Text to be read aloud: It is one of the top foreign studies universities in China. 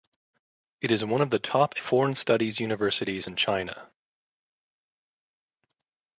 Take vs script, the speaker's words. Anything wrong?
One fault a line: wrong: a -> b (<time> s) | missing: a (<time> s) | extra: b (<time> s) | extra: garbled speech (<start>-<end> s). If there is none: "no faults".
no faults